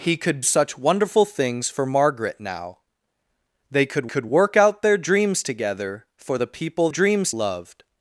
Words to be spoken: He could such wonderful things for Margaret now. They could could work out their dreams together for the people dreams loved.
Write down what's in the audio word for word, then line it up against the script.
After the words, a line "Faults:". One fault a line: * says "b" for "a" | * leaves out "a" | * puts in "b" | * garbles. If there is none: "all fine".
He could such wonderful things for Margaret now. They could could work out their dreams together for the people dreams loved.
Faults:
all fine